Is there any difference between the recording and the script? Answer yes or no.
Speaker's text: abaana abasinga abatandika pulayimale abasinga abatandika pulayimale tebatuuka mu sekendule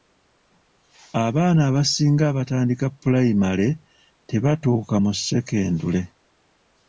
yes